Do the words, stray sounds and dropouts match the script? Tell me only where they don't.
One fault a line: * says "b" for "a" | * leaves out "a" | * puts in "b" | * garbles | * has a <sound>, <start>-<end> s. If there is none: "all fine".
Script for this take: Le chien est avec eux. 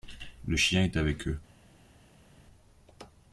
all fine